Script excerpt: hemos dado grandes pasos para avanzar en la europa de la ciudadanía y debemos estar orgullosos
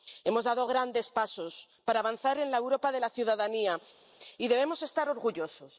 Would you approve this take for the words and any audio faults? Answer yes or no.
yes